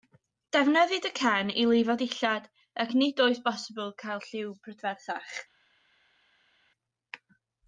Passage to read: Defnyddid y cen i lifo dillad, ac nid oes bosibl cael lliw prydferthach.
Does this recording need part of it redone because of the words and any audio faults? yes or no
no